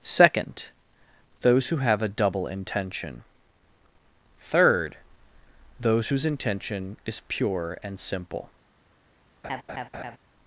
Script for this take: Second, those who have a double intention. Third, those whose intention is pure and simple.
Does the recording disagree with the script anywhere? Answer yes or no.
no